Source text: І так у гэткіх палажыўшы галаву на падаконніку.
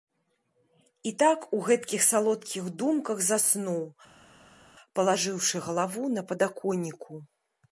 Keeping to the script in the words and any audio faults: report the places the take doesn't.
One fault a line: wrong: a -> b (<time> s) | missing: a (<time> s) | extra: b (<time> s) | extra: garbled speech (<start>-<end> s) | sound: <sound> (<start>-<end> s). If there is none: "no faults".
extra: салодкіх думках заснуў (2.1 s)